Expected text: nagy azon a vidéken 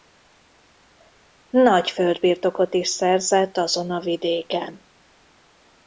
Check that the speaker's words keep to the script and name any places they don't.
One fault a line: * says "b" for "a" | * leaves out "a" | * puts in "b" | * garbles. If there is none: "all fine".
* puts in "földbirtokot is szerzett"